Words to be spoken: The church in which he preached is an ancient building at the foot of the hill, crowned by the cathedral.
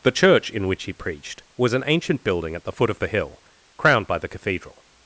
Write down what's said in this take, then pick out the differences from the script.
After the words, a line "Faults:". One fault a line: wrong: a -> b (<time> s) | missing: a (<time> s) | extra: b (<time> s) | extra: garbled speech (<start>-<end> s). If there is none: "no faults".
The church in which he preached was an ancient building at the foot of the hill, crowned by the cathedral.
Faults:
wrong: is -> was (1.6 s)